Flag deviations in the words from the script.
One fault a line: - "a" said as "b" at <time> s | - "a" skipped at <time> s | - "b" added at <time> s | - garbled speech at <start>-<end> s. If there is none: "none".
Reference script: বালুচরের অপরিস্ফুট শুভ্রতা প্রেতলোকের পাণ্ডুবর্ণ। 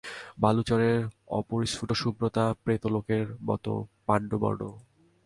- "মতো" added at 3.4 s